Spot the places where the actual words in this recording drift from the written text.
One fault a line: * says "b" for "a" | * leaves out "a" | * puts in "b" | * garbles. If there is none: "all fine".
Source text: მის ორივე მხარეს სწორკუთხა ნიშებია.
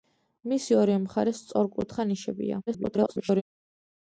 * garbles